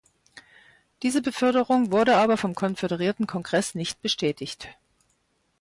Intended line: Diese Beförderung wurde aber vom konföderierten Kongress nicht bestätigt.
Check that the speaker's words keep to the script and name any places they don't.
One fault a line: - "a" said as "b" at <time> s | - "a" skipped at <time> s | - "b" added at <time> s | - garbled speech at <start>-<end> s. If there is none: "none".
none